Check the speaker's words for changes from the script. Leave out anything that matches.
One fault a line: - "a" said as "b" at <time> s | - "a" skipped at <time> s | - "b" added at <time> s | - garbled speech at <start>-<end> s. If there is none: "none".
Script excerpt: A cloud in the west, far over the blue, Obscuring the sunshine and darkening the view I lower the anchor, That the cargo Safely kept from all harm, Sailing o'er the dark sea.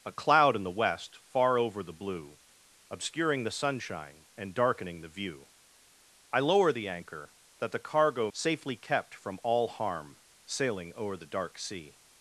none